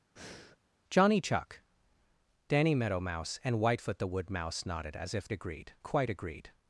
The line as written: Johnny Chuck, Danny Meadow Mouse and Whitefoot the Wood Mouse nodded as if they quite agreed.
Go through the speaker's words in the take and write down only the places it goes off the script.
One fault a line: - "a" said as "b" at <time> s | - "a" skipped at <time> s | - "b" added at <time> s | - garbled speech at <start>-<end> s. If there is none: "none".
- "they" said as "agreed" at 5.3 s